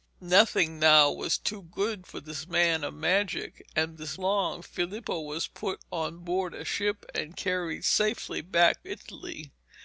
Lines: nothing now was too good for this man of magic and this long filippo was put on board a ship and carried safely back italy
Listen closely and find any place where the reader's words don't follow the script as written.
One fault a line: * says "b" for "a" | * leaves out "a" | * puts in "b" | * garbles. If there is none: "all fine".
all fine